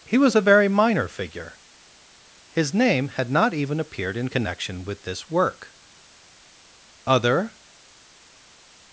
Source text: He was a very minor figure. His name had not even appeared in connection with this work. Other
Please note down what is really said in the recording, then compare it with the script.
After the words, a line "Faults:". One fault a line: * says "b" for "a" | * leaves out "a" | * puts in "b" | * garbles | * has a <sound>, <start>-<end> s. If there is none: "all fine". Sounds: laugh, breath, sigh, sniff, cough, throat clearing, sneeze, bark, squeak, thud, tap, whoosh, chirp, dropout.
He was a very minor figure. His name had not even appeared in connection with this work. Other
Faults:
all fine